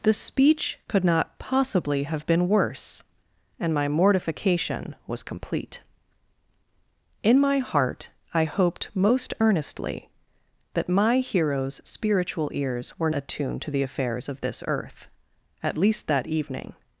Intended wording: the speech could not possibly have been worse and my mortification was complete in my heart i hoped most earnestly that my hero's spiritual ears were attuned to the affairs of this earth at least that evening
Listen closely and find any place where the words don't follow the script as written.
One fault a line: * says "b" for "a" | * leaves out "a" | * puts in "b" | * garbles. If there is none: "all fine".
all fine